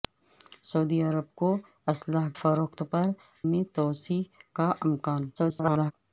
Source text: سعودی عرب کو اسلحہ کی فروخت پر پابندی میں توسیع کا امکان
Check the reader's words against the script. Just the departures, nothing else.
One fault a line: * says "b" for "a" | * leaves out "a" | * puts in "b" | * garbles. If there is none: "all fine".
* leaves out "کی"
* leaves out "پابندی"
* garbles